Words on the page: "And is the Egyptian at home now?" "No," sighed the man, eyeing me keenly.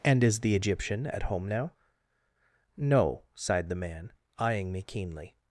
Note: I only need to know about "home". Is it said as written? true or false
true